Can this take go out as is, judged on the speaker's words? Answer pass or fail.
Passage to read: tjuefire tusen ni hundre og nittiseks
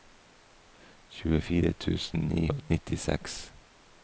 fail